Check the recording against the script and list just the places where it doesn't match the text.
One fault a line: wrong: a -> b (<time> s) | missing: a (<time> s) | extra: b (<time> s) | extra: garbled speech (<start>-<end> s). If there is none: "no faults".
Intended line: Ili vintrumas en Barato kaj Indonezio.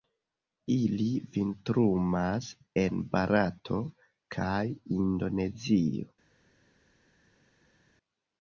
no faults